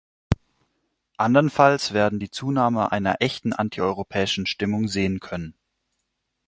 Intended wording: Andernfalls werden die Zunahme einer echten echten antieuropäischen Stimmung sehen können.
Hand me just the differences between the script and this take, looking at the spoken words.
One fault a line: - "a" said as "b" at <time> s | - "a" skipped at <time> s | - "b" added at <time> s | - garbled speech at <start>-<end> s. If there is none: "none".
- "echten" skipped at 3.5 s